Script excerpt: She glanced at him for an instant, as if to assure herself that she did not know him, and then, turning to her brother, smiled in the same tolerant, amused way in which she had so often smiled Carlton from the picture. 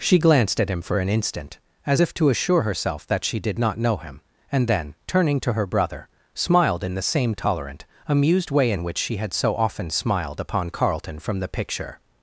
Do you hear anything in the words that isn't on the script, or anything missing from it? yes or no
yes